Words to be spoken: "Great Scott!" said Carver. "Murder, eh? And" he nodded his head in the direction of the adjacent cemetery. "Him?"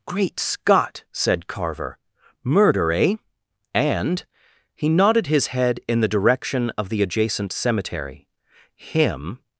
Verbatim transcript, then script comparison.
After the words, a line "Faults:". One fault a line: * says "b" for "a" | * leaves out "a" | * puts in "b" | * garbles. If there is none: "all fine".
"Great Scott!" said Carver. "Murder, eh? And" he nodded his head in the direction of the adjacent cemetery. "Him?"
Faults:
all fine